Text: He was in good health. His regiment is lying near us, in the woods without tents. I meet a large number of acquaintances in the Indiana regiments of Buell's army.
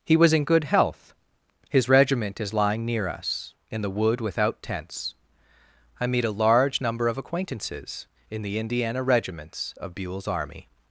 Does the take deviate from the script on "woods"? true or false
true